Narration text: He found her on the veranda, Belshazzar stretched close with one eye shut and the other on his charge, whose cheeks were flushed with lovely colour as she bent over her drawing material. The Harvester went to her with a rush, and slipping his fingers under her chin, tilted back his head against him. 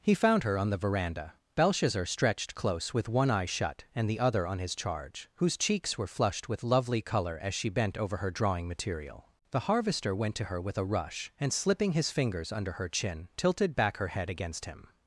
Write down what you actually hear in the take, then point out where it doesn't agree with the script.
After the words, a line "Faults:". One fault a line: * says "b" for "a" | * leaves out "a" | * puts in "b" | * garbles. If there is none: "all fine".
He found her on the veranda, Belshazzar stretched close with one eye shut and the other on his charge, whose cheeks were flushed with lovely colour as she bent over her drawing material. The Harvester went to her with a rush, and slipping his fingers under her chin, tilted back her head against him.
Faults:
* says "her" for "his"